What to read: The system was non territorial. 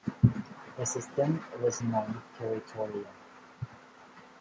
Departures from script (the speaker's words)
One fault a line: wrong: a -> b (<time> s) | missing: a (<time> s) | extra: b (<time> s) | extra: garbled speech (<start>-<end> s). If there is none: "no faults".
no faults